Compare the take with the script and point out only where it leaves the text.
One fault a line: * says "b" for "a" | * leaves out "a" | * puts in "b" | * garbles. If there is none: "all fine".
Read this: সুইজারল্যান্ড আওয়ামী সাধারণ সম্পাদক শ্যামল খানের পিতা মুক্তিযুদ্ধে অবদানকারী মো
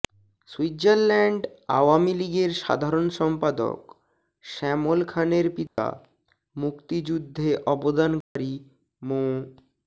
* puts in "লীগের"